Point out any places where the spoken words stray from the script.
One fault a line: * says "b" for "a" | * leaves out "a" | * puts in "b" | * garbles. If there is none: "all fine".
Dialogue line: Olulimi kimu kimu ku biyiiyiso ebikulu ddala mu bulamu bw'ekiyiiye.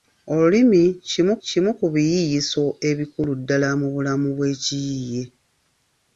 all fine